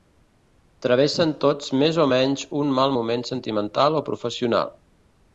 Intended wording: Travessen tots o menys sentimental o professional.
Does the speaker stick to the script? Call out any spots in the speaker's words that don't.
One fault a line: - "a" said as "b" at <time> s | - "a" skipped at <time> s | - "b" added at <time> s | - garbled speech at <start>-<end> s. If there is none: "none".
- "més" added at 1.8 s
- "un mal moment" added at 2.6 s